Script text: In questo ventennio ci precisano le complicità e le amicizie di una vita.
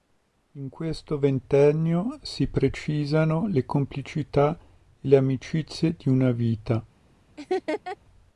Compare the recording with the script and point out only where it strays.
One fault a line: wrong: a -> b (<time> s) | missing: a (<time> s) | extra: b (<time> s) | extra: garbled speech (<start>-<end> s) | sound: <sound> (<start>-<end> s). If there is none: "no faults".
wrong: ci -> si (2.2 s)
sound: laugh (7.4-8.0 s)